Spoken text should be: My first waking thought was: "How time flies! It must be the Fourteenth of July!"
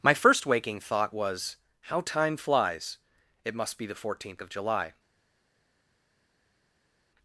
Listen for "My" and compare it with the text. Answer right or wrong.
right